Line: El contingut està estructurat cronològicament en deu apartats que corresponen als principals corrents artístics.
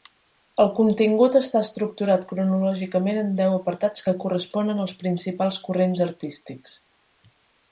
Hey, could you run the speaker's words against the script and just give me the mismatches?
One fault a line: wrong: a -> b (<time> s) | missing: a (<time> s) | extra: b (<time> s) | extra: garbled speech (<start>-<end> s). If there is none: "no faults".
no faults